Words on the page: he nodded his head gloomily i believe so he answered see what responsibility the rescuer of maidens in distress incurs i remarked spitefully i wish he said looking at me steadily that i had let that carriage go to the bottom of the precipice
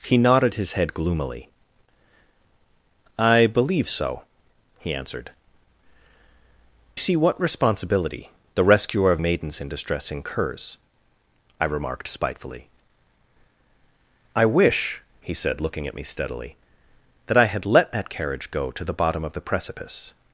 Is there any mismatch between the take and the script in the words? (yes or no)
no